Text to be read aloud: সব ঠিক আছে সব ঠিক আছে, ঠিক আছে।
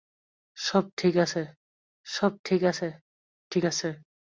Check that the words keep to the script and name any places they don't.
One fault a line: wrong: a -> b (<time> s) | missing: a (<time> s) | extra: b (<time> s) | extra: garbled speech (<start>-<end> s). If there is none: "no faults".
no faults